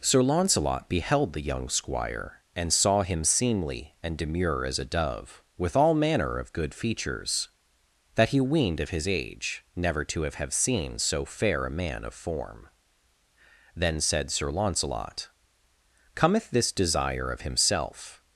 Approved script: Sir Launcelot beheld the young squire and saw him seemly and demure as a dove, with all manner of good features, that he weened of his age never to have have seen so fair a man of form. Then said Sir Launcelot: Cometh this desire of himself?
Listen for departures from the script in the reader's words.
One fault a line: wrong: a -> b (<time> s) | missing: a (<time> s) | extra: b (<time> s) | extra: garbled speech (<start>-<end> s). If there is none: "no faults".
no faults